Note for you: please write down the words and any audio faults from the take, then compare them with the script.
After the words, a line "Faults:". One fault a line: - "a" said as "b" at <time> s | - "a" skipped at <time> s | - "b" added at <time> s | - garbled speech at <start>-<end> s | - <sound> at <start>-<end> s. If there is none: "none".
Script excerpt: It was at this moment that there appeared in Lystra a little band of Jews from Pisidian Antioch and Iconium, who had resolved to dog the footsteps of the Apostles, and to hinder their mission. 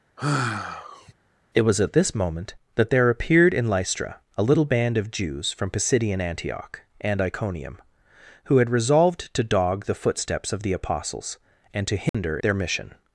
It was at this moment that there appeared in Lystra a little band of Jews from Pisidian Antioch and Iconium, who had resolved to dog the footsteps of the Apostles, and to hinder their mission.
Faults:
- sigh at 0.2-1.1 s
- dropout at 12.1-12.1 s